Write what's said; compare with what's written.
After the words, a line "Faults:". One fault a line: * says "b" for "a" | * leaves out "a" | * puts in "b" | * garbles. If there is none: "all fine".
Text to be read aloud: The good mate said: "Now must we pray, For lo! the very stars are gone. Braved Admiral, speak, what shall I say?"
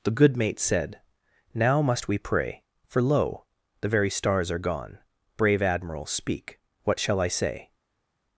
The good mate said: "Now must we pray, For lo! the very stars are gone. Brave Admiral, speak, what shall I say?"
Faults:
* says "Brave" for "Braved"